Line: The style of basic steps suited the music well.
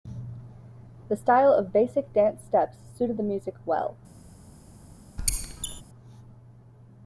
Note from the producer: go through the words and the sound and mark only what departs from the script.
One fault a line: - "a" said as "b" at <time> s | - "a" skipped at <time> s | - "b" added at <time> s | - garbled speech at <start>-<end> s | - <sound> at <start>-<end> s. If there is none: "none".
- "dance" added at 2.1 s
- squeak at 5.2-5.8 s